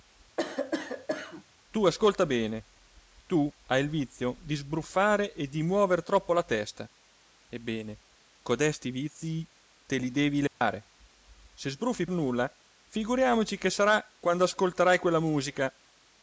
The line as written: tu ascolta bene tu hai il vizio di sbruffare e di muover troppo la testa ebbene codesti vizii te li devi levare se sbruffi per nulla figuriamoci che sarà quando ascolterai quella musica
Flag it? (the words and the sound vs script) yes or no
yes